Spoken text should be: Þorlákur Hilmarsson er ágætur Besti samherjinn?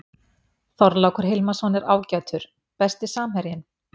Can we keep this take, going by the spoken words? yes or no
yes